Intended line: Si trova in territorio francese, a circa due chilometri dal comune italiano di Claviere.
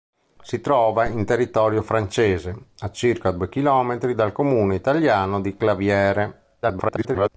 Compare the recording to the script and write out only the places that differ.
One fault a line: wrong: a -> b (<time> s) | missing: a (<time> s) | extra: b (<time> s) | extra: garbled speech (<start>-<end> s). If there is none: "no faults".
extra: garbled speech (6.6-7.3 s)